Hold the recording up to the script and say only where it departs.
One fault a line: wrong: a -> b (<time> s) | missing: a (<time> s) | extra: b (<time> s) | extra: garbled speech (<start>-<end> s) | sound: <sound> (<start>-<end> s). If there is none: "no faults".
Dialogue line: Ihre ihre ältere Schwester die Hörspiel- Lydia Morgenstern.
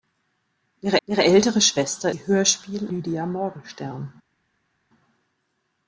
no faults